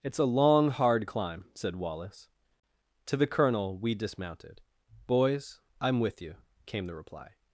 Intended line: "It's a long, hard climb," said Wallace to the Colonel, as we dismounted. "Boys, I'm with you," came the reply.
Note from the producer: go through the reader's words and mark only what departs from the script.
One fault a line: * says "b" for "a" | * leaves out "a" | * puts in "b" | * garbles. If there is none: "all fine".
* leaves out "as"